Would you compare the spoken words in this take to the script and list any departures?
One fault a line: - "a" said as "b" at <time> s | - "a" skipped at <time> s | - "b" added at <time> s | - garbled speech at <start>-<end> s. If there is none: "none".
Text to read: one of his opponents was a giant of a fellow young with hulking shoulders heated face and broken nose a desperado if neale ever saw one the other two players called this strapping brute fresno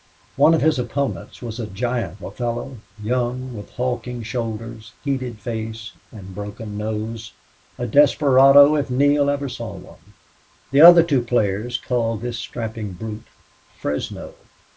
- "of" skipped at 2.2 s